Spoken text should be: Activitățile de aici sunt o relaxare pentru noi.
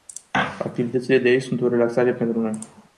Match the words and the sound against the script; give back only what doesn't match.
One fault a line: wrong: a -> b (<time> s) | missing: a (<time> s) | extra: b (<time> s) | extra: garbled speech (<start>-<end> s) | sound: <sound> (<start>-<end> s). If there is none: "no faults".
no faults